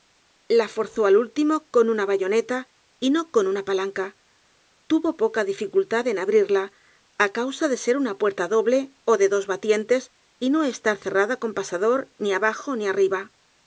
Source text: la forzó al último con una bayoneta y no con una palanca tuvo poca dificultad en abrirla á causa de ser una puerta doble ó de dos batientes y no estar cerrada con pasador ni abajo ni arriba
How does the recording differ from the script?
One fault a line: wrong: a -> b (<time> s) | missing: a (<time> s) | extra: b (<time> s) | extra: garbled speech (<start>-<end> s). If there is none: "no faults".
no faults